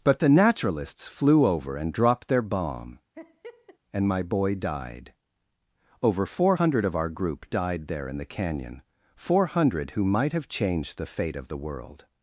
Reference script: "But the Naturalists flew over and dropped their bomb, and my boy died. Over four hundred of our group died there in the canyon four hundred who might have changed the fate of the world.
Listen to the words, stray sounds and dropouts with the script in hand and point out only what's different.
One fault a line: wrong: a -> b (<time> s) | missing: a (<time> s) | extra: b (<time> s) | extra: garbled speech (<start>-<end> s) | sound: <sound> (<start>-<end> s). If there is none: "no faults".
sound: laugh (3.1-3.8 s)